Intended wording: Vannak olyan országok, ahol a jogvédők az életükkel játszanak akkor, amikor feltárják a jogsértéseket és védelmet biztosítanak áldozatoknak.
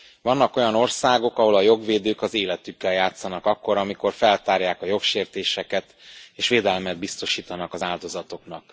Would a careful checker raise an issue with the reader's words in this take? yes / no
yes